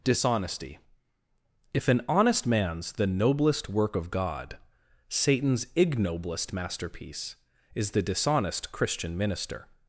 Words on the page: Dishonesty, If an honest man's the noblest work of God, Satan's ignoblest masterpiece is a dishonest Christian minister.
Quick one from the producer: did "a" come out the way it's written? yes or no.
no